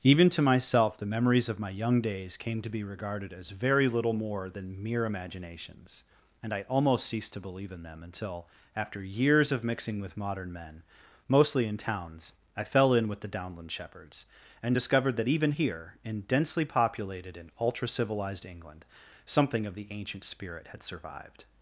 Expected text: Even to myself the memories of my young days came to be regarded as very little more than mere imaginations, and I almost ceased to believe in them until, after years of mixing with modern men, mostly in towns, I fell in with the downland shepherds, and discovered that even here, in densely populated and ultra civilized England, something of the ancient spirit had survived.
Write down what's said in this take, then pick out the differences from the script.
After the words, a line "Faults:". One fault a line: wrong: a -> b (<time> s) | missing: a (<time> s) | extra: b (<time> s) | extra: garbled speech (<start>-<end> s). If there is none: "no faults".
Even to myself the memories of my young days came to be regarded as very little more than mere imaginations, and I almost ceased to believe in them until, after years of mixing with modern men, mostly in towns, I fell in with the downland shepherds, and discovered that even here, in densely populated and ultra civilized England, something of the ancient spirit had survived.
Faults:
no faults